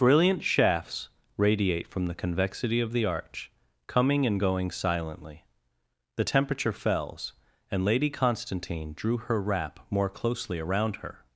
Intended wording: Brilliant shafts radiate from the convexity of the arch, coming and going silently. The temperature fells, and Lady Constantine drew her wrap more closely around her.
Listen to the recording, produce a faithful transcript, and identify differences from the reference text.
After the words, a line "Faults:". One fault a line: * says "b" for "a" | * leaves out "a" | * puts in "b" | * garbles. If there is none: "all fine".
Brilliant shafts radiate from the convexity of the arch, coming and going silently. The temperature fells, and Lady Constantine drew her wrap more closely around her.
Faults:
all fine